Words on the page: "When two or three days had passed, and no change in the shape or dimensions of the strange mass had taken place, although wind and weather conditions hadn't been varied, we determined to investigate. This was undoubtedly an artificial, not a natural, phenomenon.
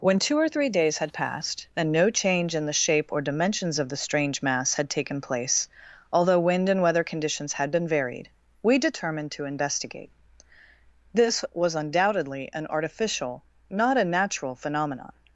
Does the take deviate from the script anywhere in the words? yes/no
yes